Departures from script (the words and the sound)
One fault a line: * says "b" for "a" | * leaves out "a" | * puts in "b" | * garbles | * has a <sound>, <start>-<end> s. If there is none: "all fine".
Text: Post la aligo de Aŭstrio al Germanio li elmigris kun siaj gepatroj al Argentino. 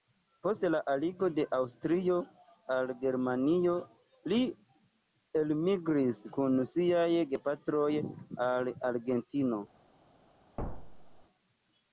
* has a thud, 10.6-11.2 s